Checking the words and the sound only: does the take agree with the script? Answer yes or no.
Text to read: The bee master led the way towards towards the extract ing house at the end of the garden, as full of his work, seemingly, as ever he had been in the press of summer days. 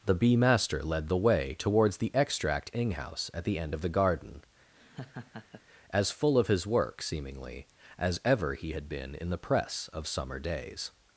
no